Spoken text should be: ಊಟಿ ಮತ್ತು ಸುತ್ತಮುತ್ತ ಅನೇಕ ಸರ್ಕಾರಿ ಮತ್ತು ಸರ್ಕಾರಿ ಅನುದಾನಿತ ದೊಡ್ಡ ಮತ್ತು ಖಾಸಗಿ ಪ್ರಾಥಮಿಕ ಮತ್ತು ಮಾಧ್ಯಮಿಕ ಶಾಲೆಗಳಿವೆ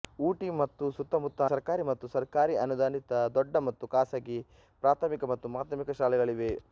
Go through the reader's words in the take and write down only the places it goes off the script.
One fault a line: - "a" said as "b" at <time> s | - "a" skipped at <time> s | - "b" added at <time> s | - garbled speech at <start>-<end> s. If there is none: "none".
- "ಅನೇಕ" skipped at 1.4 s